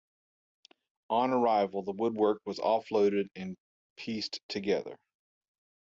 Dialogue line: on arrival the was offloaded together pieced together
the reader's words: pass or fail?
fail